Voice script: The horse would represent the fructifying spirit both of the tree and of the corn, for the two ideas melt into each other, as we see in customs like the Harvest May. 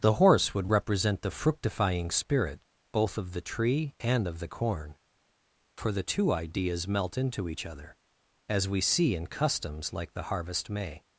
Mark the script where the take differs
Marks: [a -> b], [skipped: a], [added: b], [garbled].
The horse would represent the fructifying spirit both of the tree and of the corn, for the two ideas melt into each other, as we see in customs like the Harvest May.